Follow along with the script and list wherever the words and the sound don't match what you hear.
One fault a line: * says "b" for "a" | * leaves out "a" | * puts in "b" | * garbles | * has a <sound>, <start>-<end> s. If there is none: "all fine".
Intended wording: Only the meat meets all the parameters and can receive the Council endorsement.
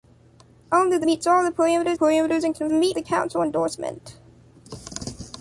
* leaves out "meat"
* puts in "parameters"
* says "meat" for "receive"